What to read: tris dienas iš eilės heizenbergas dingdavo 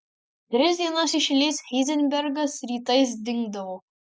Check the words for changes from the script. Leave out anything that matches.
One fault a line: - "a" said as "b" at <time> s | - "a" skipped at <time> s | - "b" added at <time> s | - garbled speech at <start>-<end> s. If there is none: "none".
- "rytais" added at 2.7 s